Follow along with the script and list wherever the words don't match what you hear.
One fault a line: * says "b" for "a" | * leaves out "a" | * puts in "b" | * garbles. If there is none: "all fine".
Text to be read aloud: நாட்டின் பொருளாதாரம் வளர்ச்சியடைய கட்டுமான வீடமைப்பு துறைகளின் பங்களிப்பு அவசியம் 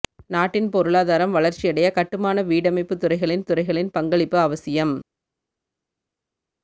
* puts in "துறைகளின்"